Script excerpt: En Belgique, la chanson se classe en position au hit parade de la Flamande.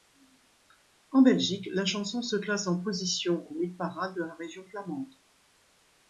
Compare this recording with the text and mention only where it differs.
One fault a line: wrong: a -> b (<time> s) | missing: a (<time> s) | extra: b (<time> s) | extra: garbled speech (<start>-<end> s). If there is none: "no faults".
extra: Région (4.3 s)